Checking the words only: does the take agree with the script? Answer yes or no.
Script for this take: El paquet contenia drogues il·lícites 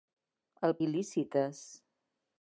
no